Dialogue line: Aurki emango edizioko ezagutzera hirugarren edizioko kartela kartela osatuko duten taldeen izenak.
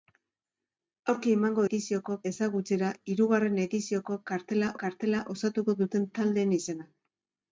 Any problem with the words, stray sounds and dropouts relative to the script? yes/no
no